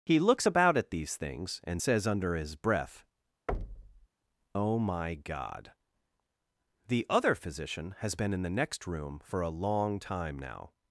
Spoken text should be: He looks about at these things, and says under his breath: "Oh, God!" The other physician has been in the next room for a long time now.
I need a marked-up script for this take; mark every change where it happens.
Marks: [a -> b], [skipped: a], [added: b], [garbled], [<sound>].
He looks about at these things, and says under his breath: [thud] "Oh, [added: my] God!" The other physician has been in the next room for a long time now.